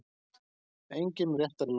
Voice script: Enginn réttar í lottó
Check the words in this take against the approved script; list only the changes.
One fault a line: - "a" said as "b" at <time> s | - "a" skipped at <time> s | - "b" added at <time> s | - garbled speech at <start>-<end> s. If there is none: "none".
none